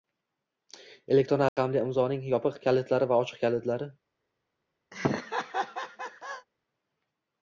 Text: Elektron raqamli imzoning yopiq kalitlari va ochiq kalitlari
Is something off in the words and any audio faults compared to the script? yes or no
yes